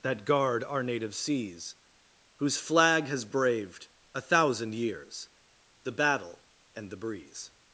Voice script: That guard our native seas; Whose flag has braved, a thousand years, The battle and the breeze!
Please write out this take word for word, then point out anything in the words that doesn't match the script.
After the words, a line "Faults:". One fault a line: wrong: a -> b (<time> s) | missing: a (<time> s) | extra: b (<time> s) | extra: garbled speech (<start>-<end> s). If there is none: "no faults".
That guard our native seas; Whose flag has braved, a thousand years, The battle and the breeze!
Faults:
no faults